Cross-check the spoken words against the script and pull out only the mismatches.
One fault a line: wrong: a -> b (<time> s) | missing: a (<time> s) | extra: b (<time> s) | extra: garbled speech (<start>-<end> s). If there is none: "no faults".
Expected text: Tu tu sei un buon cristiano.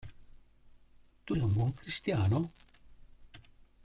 missing: tu (1.4 s)